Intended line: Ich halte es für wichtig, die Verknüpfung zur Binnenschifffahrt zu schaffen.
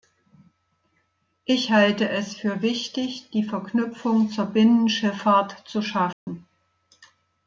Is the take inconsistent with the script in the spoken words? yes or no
no